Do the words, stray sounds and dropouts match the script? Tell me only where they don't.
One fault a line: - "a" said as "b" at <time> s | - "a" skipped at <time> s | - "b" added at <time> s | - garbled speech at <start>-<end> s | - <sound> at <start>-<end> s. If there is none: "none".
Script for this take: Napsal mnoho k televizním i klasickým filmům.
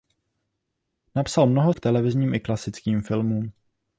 none